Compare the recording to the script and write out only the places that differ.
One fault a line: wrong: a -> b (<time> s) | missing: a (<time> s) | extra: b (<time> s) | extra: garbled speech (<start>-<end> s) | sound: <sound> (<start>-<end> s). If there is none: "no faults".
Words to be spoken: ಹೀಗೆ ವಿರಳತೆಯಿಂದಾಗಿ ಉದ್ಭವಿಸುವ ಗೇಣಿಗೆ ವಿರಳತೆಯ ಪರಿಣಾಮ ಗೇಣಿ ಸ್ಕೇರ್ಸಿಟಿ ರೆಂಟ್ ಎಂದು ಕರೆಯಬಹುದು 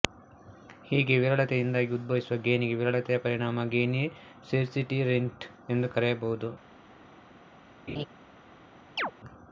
sound: laugh (7.9-8.1 s)
sound: chirp (9.0-9.1 s)